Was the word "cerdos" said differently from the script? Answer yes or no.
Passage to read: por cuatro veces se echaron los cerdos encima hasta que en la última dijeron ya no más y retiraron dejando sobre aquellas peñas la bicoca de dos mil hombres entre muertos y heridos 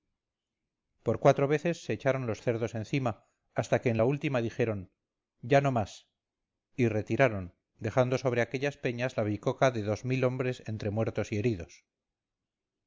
no